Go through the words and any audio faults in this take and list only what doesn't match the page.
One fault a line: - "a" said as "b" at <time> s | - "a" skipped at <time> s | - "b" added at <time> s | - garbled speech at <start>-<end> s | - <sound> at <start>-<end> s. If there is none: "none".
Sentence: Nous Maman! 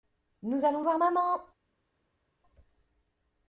- "allons voir" added at 0.6 s